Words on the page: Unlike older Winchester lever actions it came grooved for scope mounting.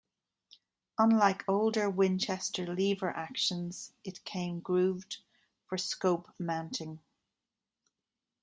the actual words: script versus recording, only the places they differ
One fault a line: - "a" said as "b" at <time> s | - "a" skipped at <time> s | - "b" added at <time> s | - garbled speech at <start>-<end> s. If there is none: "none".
none